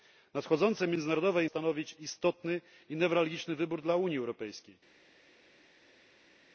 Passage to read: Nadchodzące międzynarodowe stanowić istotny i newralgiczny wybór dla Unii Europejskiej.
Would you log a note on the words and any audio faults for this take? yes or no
no